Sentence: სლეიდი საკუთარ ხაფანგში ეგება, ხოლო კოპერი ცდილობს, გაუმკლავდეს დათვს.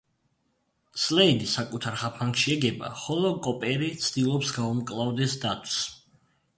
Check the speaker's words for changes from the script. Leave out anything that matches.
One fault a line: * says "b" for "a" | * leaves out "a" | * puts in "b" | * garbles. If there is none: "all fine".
all fine